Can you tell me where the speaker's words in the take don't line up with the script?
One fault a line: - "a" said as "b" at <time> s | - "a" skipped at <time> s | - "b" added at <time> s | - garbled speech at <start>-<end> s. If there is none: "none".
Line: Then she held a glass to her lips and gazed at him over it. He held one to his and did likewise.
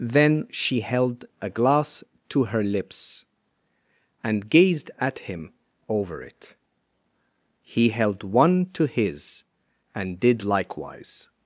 none